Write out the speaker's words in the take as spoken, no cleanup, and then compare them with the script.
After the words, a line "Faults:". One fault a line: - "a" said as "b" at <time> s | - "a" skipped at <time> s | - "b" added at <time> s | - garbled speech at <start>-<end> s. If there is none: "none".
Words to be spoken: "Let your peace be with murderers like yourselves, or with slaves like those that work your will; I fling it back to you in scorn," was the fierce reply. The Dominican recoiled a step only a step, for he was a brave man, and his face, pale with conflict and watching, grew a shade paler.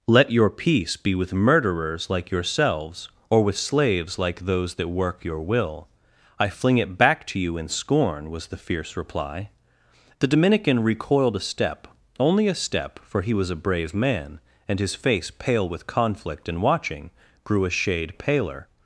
"Let your peace be with murderers like yourselves, or with slaves like those that work your will; I fling it back to you in scorn," was the fierce reply. The Dominican recoiled a step only a step, for he was a brave man, and his face, pale with conflict and watching, grew a shade paler.
Faults:
none